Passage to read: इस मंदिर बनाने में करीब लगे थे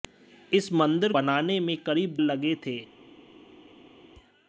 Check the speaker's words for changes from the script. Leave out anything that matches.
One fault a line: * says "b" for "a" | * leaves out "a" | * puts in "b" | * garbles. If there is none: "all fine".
all fine